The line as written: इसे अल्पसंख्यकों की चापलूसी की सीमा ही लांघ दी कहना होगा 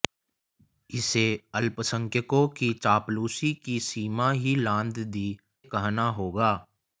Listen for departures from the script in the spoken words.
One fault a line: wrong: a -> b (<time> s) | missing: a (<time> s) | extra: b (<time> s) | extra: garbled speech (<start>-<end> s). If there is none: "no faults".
no faults